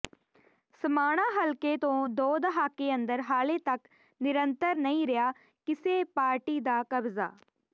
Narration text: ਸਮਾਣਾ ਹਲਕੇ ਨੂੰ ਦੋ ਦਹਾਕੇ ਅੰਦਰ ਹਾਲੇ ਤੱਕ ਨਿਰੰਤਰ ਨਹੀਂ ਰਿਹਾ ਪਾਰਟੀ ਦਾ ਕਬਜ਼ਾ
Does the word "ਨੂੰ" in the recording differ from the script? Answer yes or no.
yes